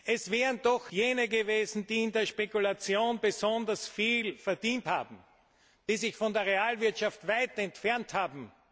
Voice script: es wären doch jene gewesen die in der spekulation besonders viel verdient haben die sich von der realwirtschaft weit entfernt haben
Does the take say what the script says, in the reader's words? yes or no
yes